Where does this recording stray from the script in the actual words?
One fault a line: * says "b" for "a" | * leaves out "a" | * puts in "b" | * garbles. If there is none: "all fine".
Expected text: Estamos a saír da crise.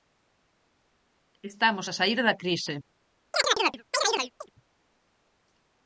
all fine